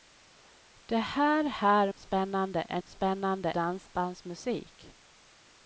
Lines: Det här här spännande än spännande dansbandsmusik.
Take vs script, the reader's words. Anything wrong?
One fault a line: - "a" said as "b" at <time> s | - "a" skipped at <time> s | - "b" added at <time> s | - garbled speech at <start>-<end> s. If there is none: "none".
none